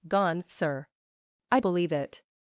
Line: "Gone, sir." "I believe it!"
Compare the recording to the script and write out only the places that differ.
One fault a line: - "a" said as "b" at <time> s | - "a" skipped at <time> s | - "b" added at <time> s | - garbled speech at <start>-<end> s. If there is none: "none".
none